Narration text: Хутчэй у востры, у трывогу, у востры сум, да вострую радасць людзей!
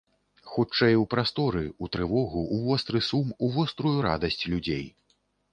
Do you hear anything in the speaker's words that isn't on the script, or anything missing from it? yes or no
yes